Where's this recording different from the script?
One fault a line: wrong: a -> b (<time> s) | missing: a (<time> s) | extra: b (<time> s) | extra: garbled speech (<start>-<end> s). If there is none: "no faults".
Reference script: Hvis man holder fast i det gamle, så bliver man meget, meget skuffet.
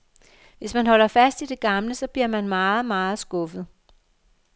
no faults